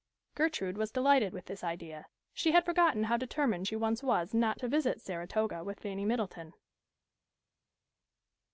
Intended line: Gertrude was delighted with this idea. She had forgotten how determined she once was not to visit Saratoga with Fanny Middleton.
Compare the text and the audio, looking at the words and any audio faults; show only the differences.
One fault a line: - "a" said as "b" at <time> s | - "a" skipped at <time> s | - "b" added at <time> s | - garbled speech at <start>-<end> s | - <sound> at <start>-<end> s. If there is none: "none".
none